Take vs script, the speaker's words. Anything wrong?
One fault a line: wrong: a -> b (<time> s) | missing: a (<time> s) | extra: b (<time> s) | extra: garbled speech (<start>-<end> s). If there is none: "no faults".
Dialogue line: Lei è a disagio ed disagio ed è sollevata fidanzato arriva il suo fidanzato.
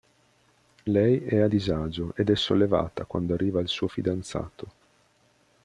missing: disagio ed (2.3 s)
wrong: fidanzato -> quando (3.0 s)